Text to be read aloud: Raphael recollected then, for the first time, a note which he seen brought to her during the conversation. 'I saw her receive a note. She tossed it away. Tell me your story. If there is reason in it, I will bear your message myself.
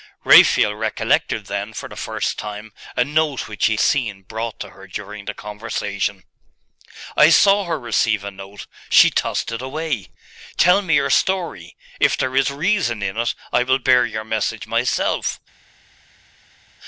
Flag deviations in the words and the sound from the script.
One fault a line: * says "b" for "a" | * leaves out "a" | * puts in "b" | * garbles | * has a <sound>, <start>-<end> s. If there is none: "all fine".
all fine